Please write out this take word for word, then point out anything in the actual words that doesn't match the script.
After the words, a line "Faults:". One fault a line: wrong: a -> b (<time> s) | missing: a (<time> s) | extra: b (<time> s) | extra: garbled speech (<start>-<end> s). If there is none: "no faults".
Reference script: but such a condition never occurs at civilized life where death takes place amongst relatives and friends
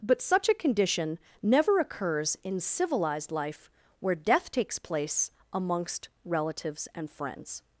but such a condition never occurs in civilized life where death takes place amongst relatives and friends
Faults:
wrong: at -> in (2.4 s)